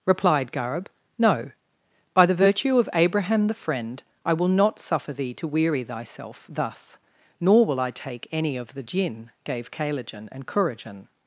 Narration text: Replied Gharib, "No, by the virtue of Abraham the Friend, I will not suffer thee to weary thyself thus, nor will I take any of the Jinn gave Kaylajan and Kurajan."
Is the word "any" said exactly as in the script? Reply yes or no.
yes